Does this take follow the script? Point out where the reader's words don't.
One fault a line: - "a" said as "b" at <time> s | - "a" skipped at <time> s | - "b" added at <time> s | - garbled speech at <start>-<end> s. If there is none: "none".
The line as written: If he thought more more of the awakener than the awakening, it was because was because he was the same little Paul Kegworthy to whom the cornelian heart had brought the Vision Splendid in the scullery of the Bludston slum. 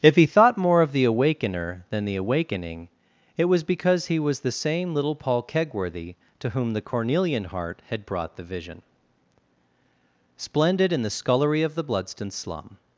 - "more" skipped at 0.8 s
- "was because" skipped at 4.1 s